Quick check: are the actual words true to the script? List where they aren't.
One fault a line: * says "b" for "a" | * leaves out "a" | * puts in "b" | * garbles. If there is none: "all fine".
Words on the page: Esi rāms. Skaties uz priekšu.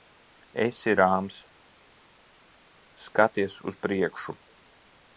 all fine